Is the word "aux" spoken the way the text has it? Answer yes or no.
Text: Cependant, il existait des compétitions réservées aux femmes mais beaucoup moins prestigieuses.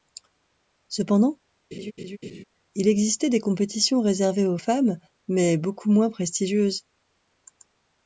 yes